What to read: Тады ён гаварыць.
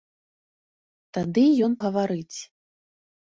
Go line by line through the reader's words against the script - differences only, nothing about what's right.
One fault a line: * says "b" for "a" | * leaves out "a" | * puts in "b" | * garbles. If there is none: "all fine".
all fine